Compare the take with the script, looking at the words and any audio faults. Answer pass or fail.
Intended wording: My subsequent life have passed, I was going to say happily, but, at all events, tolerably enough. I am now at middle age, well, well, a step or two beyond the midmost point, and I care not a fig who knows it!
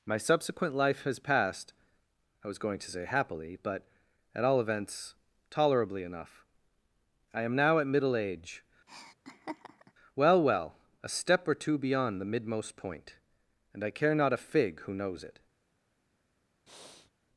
fail